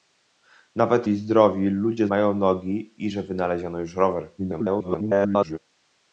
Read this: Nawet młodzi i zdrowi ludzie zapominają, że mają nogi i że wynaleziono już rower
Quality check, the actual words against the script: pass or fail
fail